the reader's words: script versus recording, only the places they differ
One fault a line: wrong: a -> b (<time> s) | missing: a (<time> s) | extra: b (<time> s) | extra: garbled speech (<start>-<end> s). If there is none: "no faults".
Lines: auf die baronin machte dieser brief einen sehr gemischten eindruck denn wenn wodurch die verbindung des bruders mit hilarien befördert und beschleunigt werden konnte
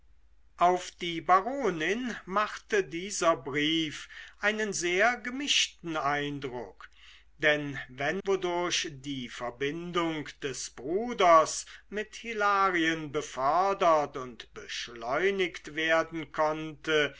no faults